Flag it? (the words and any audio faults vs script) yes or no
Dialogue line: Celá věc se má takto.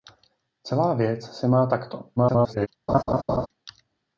yes